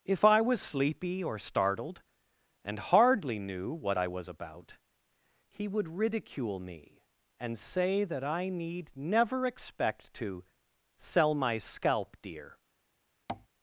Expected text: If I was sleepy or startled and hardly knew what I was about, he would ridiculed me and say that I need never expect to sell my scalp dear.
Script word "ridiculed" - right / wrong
wrong